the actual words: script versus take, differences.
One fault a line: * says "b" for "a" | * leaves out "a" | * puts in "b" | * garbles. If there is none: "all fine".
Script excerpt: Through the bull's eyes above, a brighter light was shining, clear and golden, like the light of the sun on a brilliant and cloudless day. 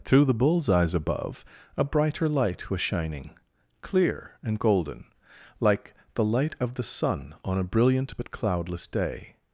* says "but" for "and"